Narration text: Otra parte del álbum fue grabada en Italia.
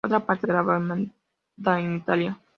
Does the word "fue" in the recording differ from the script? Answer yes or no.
yes